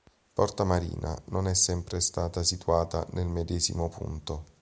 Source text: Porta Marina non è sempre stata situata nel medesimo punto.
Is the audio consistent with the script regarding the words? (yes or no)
yes